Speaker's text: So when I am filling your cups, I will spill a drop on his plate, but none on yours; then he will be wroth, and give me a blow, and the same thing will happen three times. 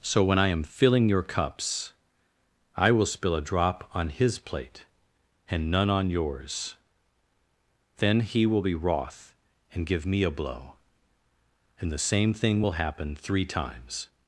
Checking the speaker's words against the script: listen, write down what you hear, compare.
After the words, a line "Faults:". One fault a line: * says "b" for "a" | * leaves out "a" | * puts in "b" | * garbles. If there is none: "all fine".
So when I am filling your cups, I will spill a drop on his plate, and none on yours; then he will be wroth, and give me a blow, and the same thing will happen three times.
Faults:
* says "and" for "but"